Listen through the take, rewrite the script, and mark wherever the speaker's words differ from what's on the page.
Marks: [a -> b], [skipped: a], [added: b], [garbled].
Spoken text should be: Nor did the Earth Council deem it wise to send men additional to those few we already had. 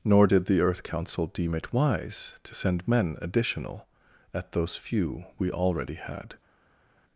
Nor did the Earth Council deem it wise to send men additional [to -> at] those few we already had.